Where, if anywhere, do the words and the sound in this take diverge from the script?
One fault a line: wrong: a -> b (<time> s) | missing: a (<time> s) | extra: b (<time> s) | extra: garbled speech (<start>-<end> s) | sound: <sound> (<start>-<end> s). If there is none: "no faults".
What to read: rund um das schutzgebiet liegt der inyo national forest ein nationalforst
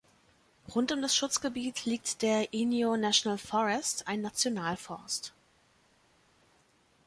no faults